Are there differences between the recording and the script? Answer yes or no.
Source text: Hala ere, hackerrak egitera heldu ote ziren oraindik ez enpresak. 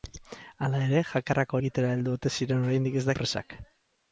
no